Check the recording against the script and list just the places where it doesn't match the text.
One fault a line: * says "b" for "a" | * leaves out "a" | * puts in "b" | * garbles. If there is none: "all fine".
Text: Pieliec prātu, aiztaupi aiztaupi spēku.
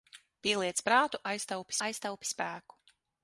all fine